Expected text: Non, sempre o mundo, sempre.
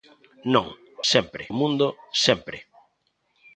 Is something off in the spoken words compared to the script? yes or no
no